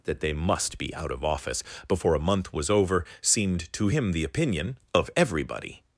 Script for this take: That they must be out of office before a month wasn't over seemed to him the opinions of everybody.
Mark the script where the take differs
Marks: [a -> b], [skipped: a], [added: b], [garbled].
That they must be out of office before a month [wasn't -> was] over seemed to him the [opinions -> opinion] of everybody.